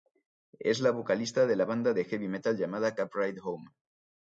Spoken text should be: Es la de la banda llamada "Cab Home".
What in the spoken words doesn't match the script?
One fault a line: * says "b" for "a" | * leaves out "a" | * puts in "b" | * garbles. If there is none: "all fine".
* puts in "vocalista"
* puts in "de heavy metal"
* puts in "Ride"